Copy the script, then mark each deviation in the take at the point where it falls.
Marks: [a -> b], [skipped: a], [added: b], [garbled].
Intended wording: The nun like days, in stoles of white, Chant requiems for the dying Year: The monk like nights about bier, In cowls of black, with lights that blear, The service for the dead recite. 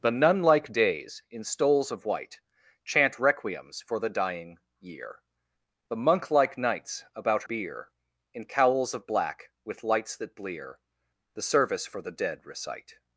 The nun like days, in stoles of white, Chant requiems for the dying Year: The monk like nights about bier, In cowls of black, with lights that blear, The service for the dead recite.